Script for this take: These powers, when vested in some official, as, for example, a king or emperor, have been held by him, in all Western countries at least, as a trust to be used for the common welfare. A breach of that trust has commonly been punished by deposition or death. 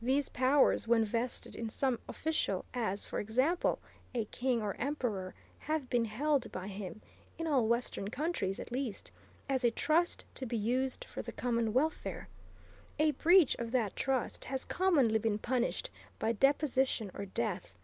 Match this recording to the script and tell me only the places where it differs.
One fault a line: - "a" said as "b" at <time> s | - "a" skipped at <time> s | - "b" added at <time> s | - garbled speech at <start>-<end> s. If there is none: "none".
none